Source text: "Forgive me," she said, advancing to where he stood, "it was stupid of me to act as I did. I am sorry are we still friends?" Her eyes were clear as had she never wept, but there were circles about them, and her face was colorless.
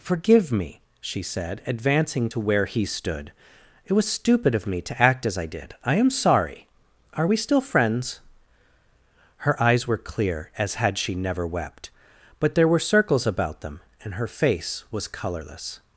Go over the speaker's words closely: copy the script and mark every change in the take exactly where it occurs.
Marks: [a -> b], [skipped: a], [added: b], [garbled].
"Forgive me," she said, advancing to where he stood, "it was stupid of me to act as I did. I am sorry are we still friends?" Her eyes were clear as had she never wept, but there were circles about them, and her face was colorless.